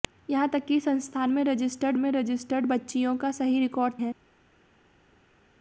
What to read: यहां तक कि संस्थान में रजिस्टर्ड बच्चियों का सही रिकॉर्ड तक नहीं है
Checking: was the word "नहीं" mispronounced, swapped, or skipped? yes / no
yes